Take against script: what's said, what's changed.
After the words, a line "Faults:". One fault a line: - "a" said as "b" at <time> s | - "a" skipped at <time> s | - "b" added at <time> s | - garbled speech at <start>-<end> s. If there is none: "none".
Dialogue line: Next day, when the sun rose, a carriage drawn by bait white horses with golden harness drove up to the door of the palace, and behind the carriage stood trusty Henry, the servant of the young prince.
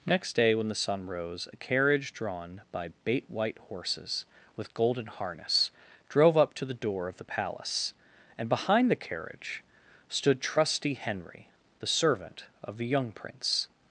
Next day, when the sun rose, a carriage drawn by bait white horses with golden harness drove up to the door of the palace, and behind the carriage stood trusty Henry, the servant of the young prince.
Faults:
none